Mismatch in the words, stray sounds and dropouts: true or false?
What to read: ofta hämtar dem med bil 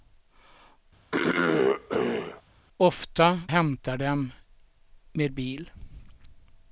true